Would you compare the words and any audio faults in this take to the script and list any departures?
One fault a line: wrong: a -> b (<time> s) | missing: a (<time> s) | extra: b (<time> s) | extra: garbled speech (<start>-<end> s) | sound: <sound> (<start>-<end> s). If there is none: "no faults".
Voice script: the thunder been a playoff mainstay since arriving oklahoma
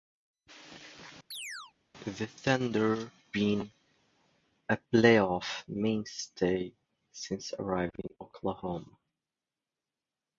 sound: chirp (1.3-1.7 s)